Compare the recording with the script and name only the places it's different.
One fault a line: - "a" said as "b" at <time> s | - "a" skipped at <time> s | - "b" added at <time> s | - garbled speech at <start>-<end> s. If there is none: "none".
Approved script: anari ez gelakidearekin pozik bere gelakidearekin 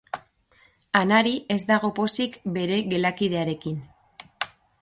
- "gelakidearekin" said as "dago" at 1.7 s